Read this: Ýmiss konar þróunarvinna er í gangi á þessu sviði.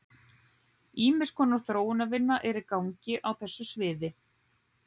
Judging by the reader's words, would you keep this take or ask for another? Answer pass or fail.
pass